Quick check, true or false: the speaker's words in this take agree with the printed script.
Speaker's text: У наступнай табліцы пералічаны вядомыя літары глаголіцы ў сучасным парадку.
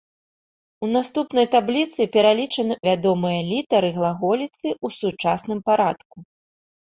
true